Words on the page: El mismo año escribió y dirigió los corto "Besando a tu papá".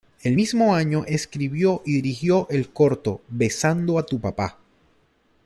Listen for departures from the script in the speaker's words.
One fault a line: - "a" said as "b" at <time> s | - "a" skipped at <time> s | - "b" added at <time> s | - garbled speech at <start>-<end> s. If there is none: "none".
- "los" said as "el" at 2.5 s